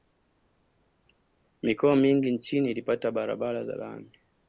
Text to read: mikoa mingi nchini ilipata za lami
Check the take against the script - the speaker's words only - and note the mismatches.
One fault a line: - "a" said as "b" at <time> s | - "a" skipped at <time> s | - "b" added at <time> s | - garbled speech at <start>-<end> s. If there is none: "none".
- "barabara" added at 3.1 s